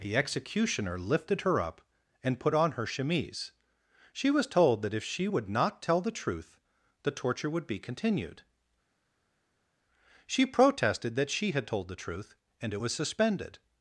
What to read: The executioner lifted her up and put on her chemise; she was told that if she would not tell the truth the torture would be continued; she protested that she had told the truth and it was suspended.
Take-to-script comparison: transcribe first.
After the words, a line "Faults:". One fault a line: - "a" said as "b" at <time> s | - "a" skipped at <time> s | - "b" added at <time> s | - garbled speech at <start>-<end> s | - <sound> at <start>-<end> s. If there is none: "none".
The executioner lifted her up and put on her chemise; she was told that if she would not tell the truth the torture would be continued; she protested that she had told the truth and it was suspended.
Faults:
none